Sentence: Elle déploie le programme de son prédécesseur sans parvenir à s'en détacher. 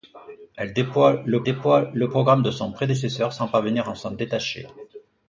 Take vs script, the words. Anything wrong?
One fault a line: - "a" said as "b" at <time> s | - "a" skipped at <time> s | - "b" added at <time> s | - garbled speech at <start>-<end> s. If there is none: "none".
- "déploie le" added at 1.4 s